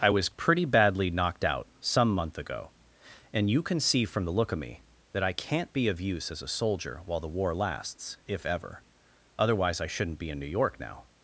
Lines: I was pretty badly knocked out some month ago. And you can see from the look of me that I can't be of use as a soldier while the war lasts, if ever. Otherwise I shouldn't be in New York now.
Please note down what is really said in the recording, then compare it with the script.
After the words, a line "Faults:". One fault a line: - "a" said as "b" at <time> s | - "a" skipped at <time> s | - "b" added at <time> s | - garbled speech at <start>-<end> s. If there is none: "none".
I was pretty badly knocked out some month ago. And you can see from the look of me that I can't be of use as a soldier while the war lasts, if ever. Otherwise I shouldn't be in New York now.
Faults:
none